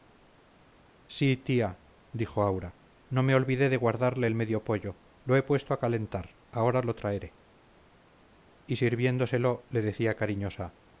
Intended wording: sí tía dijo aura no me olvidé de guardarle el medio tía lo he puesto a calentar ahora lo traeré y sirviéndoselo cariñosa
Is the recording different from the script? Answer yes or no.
yes